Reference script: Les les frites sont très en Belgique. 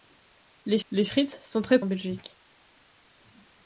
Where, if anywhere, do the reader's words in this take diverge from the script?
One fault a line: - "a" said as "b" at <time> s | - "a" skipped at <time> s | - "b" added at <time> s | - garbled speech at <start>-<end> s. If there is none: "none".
none